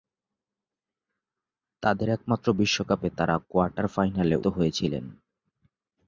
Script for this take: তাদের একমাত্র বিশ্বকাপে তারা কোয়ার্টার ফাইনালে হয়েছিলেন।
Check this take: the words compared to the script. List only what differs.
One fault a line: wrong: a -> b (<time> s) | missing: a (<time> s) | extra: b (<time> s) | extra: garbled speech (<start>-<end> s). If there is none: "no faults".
no faults